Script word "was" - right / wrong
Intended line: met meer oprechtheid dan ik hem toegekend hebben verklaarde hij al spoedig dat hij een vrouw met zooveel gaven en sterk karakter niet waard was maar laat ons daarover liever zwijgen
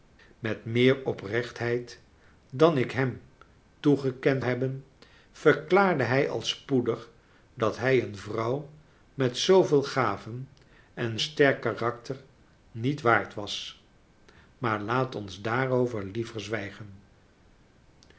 right